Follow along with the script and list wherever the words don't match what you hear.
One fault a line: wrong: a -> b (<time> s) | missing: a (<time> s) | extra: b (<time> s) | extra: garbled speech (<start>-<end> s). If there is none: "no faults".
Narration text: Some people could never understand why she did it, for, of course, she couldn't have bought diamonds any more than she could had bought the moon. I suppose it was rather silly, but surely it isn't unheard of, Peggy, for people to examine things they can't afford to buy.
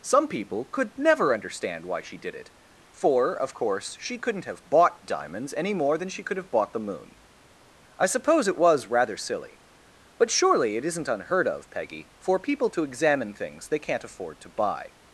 wrong: had -> have (6.4 s)